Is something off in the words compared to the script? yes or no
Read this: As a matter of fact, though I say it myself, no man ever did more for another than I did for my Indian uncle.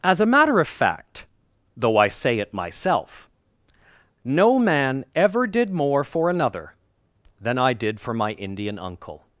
no